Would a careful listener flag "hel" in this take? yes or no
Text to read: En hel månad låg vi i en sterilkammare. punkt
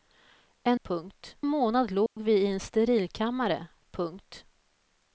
yes